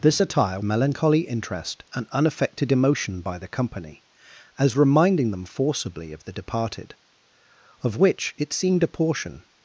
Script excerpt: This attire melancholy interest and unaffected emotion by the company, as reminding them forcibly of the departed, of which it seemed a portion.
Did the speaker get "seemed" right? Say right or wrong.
right